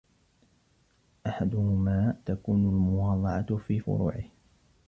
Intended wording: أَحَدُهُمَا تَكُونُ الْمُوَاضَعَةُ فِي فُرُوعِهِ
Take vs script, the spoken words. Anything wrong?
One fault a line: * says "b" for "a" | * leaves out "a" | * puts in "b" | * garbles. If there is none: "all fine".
all fine